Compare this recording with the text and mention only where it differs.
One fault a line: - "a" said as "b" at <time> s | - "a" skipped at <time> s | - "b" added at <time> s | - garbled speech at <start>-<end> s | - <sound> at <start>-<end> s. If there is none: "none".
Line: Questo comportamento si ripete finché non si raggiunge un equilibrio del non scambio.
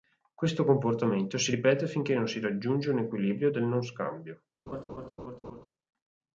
- laugh at 4.7-5.7 s